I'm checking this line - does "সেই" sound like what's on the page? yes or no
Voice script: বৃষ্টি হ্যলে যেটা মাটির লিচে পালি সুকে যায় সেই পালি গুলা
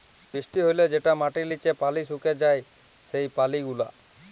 yes